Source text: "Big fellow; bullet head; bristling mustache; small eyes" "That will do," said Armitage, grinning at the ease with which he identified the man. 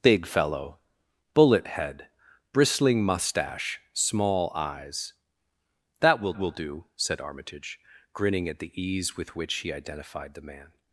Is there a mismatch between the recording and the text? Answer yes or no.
yes